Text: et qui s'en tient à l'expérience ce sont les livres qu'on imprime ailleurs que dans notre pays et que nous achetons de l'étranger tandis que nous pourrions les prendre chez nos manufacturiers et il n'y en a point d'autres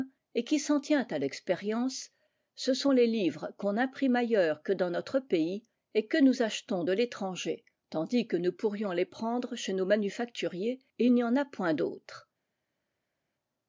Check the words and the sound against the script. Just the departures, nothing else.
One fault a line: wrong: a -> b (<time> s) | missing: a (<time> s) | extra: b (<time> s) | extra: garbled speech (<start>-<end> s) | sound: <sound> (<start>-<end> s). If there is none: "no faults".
no faults